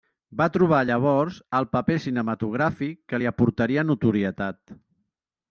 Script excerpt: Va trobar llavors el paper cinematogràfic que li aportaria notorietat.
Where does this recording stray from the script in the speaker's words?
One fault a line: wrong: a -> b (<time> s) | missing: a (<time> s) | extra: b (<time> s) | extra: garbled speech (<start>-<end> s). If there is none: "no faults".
no faults